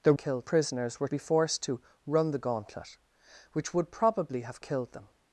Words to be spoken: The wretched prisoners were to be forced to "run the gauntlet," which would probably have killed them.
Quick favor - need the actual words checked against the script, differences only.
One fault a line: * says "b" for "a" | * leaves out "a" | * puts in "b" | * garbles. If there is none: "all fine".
* says "killed" for "wretched"
* leaves out "to"